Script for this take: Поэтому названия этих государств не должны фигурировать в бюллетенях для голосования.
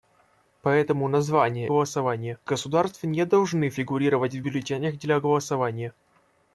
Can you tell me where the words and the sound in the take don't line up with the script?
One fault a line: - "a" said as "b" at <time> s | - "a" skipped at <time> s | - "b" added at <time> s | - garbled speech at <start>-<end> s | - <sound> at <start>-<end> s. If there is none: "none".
- "этих" said as "голосования" at 1.6 s